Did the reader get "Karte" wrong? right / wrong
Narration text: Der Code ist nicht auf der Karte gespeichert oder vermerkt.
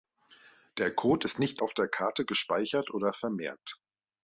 right